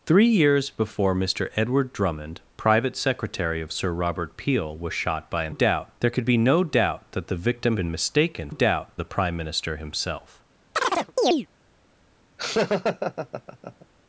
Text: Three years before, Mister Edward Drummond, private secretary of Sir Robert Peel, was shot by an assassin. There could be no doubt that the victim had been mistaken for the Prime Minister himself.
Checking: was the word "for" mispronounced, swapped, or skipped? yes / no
yes